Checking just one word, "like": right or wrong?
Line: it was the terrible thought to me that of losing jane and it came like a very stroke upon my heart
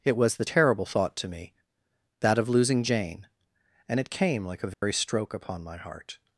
right